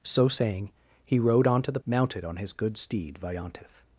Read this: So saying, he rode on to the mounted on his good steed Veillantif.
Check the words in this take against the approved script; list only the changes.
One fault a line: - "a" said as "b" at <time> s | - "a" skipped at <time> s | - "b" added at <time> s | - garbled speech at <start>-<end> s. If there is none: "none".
none